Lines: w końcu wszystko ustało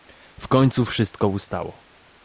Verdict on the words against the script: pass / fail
pass